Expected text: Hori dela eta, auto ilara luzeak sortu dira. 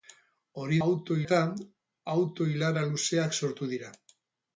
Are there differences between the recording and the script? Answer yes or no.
yes